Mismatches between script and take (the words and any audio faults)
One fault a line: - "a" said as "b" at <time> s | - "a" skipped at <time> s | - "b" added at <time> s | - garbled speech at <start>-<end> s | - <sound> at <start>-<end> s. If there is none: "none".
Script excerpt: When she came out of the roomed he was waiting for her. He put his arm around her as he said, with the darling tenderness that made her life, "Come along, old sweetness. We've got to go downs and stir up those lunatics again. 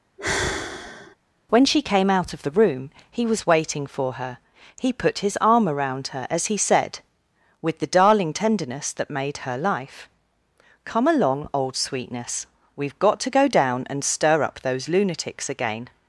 - sigh at 0.2-1.2 s
- "roomed" said as "room" at 2.5 s
- "downs" said as "down" at 13.5 s